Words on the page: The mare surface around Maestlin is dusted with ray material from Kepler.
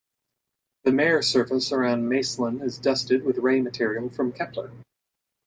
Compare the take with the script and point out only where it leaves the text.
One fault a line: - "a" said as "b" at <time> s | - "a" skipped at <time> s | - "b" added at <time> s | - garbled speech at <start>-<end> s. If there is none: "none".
none